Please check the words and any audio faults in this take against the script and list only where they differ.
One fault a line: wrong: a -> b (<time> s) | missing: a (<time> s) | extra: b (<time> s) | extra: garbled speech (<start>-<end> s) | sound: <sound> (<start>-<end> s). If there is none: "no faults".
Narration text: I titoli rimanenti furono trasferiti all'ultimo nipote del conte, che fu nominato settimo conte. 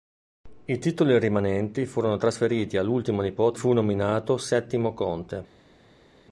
missing: del conte che (3.6 s)